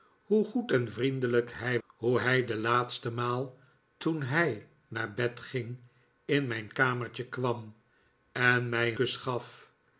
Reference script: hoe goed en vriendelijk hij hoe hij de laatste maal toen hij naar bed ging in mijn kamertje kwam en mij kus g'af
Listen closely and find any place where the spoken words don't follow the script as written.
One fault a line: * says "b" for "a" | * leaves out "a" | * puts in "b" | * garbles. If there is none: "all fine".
all fine